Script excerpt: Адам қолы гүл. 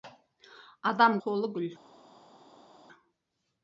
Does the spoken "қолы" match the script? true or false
true